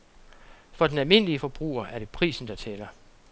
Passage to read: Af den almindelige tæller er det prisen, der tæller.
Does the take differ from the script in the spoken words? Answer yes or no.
yes